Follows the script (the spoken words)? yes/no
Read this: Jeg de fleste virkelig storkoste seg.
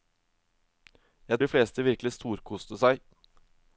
yes